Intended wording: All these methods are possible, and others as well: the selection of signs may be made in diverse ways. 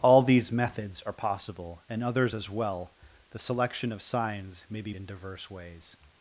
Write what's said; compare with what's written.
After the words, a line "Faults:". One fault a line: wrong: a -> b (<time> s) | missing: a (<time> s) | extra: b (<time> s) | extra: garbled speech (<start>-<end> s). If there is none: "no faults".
All these methods are possible, and others as well: the selection of signs may be in diverse ways.
Faults:
missing: made (4.9 s)